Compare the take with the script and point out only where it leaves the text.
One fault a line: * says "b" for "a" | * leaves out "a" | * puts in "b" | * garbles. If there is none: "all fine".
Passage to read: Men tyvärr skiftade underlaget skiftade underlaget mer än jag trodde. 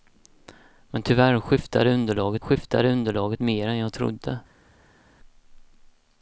all fine